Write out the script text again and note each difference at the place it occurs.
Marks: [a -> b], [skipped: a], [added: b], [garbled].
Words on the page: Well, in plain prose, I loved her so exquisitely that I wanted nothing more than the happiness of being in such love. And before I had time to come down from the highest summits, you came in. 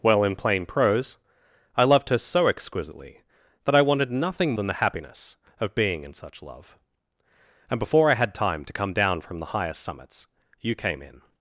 Well, in plain prose, I loved her so exquisitely that I wanted nothing [skipped: more] than the happiness of being in such love. And before I had time to come down from the highest summits, you came in.